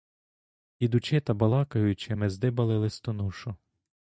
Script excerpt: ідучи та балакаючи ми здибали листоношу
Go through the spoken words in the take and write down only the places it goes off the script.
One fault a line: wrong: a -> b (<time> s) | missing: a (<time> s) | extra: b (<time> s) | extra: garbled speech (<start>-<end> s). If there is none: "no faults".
no faults